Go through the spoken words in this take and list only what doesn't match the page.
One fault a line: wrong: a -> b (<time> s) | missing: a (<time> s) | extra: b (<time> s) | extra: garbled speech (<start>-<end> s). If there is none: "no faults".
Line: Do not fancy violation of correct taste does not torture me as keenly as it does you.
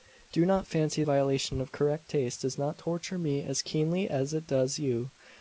no faults